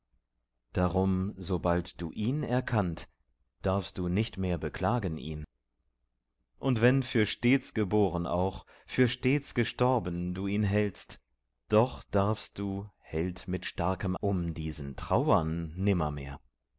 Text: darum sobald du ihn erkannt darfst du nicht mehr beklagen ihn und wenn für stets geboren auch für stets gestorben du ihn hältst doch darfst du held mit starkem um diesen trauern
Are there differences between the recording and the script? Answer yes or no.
no